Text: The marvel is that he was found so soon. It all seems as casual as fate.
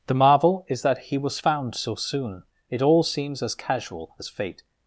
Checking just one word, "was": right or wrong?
right